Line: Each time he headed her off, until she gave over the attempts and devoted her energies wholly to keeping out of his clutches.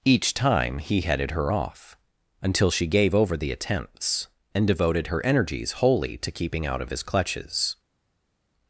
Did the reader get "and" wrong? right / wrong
right